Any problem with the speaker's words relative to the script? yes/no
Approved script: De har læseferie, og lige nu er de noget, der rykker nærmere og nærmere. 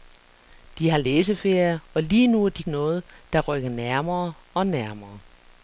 no